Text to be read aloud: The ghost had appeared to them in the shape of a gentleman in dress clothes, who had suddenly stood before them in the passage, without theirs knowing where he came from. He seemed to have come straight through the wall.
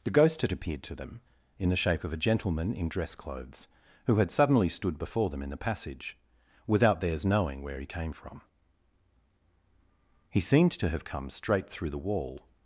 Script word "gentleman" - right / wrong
right